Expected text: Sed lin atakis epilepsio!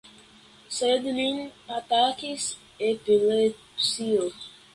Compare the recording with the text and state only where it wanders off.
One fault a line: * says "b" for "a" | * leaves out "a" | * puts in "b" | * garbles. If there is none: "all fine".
all fine